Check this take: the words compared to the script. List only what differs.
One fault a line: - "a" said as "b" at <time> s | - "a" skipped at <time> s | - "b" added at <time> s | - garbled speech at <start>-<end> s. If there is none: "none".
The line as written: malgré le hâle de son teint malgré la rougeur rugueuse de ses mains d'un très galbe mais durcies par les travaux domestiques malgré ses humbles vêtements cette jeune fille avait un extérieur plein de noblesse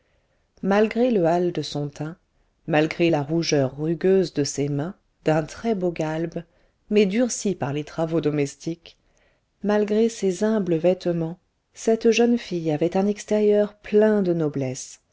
- "beau" added at 5.7 s